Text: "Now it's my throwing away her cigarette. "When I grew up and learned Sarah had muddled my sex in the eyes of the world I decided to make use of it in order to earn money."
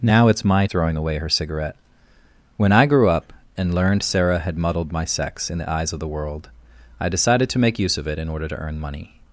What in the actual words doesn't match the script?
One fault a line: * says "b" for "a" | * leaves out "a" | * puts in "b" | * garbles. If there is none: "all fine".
all fine